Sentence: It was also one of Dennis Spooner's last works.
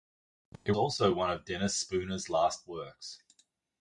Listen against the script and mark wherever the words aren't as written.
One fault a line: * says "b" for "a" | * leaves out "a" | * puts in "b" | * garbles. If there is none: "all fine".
* leaves out "was"